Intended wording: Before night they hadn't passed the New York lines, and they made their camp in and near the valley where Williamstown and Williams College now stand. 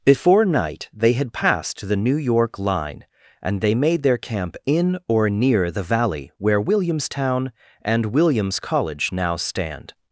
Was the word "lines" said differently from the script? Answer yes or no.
yes